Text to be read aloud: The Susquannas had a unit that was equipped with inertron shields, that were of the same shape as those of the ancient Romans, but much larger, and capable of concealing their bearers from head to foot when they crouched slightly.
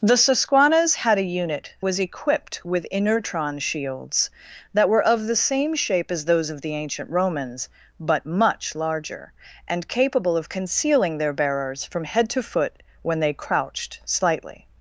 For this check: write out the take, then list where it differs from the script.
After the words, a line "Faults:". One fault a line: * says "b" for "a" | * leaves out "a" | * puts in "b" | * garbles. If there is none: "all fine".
The Susquannas had a unit was equipped with inertron shields, that were of the same shape as those of the ancient Romans, but much larger, and capable of concealing their bearers from head to foot when they crouched slightly.
Faults:
* leaves out "that"